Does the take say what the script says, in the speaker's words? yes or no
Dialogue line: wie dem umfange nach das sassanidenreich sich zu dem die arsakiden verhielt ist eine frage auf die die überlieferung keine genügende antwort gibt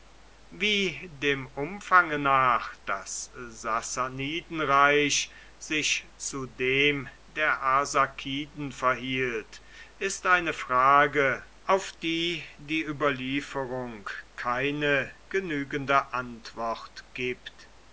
no